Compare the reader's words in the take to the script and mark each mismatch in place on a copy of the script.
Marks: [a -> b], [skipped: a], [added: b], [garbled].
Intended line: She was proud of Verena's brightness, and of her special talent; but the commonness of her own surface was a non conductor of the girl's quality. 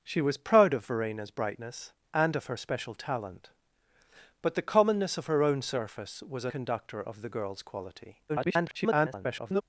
She was proud of Verena's brightness, and of her special talent; but the commonness of her own surface was a [skipped: non] conductor of the girl's quality. [garbled]